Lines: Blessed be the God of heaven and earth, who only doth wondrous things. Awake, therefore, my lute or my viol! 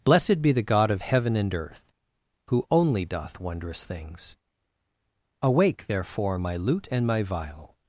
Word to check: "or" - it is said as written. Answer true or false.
false